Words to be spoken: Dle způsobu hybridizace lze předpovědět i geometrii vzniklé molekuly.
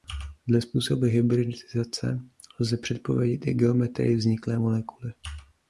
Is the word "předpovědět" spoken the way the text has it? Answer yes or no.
yes